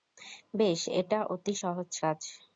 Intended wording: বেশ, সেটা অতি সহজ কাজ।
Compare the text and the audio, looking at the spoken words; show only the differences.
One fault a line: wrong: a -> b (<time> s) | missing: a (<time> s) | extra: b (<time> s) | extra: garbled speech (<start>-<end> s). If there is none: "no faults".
wrong: সেটা -> এটা (1.0 s)